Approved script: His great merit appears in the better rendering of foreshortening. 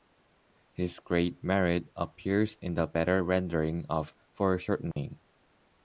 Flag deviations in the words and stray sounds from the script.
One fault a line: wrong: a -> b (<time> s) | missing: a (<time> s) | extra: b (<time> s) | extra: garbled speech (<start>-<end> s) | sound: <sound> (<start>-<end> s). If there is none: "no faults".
sound: dropout (4.9-5.0 s)